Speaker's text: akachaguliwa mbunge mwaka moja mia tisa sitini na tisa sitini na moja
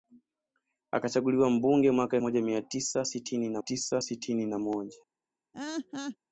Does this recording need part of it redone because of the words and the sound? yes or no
yes